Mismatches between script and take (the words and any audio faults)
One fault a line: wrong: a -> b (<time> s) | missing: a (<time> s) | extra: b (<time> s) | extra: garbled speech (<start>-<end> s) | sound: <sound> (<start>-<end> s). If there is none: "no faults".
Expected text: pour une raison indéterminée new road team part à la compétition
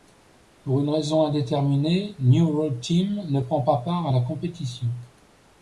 extra: ne prend pas (3.3 s)